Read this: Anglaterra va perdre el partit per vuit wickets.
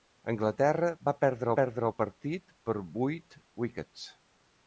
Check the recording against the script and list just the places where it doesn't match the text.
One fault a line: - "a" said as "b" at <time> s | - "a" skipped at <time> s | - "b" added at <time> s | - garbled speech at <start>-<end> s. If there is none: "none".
- "perdre" added at 1.6 s